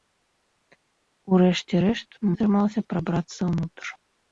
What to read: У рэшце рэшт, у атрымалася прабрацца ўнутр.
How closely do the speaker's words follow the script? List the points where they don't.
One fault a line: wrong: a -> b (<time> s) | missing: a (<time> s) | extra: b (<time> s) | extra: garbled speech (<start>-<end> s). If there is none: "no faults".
no faults